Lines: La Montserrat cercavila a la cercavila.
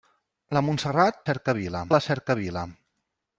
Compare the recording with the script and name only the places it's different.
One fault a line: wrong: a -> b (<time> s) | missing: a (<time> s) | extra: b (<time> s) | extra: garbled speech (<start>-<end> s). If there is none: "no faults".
no faults